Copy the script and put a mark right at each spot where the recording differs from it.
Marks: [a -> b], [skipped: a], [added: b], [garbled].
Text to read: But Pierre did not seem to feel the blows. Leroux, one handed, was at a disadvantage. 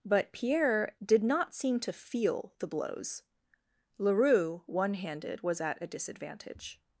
But Pierre did not seem to feel the blows. Leroux, one handed, was at a disadvantage.